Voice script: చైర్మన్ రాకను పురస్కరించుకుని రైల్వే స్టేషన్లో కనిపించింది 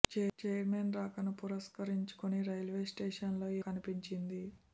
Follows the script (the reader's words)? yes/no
yes